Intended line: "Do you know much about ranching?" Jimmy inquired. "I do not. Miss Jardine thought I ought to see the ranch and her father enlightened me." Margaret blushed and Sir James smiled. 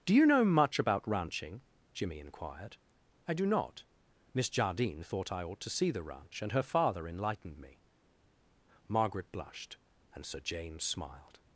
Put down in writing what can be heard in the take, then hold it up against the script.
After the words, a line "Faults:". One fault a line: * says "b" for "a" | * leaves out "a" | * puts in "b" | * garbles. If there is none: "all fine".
"Do you know much about ranching?" Jimmy inquired. "I do not. Miss Jardine thought I ought to see the ranch and her father enlightened me." Margaret blushed and Sir James smiled.
Faults:
all fine